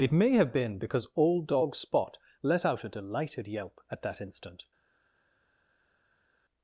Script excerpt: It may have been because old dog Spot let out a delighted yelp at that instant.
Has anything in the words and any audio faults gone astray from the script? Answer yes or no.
no